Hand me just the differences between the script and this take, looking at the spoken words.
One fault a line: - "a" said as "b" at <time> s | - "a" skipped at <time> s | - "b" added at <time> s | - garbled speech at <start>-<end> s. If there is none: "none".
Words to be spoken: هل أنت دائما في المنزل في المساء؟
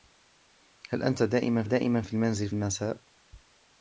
- "دائما" added at 1.6 s
- "في" skipped at 2.5 s